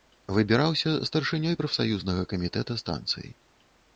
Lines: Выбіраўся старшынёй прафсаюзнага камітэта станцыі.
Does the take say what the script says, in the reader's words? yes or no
yes